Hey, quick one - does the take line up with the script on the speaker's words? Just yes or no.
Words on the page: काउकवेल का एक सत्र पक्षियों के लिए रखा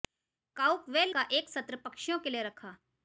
yes